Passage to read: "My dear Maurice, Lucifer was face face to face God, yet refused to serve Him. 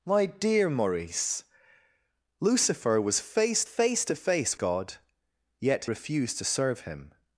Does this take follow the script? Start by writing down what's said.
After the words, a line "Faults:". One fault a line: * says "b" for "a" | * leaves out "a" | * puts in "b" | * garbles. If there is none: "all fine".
"My dear Maurice, Lucifer was face face to face God, yet refused to serve Him.
Faults:
all fine